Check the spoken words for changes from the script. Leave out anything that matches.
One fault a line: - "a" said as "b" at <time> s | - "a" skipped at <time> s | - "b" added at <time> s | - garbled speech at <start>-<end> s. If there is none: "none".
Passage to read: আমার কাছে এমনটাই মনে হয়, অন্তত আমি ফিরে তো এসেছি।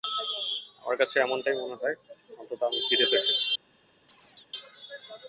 none